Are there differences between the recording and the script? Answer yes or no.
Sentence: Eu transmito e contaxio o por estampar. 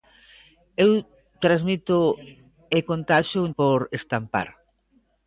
no